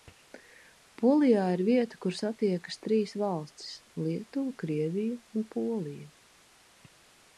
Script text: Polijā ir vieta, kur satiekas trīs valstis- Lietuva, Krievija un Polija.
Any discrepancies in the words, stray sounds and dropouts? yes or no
no